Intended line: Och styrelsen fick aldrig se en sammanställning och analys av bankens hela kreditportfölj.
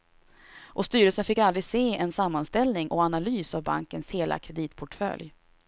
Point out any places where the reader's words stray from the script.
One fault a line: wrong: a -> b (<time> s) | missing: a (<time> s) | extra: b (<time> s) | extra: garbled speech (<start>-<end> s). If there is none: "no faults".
no faults